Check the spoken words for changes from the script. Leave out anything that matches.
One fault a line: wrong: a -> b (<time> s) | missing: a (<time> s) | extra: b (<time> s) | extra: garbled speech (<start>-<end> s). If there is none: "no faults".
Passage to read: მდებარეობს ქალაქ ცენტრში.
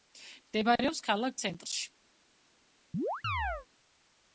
no faults